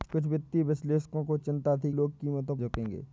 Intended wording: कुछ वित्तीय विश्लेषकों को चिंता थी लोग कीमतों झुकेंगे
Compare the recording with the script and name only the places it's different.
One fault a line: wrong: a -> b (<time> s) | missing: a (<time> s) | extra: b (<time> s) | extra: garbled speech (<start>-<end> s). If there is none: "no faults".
no faults